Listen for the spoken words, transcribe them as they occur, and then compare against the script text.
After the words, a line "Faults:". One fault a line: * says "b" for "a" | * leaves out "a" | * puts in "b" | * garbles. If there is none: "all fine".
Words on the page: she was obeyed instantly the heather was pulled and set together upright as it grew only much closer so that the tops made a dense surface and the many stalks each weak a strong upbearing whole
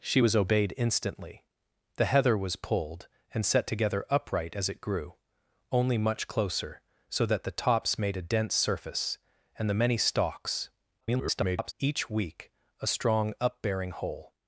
she was obeyed instantly the heather was pulled and set together upright as it grew only much closer so that the tops made a dense surface and the many stalks [garbled] each weak a strong upbearing whole
Faults:
* garbles